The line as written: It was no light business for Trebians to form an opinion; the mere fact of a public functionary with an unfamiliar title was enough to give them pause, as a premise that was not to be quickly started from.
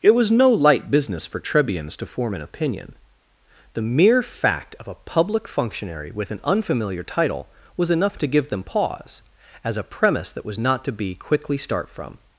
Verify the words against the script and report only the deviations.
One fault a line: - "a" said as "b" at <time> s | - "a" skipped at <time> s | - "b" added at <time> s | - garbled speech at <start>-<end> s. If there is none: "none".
- "started" said as "start" at 11.6 s